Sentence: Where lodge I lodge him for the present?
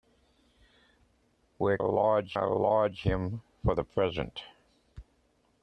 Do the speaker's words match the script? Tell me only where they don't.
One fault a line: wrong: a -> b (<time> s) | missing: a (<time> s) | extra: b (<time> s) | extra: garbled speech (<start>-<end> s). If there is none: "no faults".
no faults